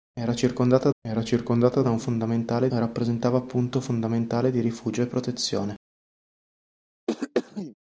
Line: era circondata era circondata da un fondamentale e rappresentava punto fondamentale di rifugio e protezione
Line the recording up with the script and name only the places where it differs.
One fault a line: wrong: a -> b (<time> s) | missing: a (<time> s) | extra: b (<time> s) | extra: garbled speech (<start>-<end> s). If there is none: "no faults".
no faults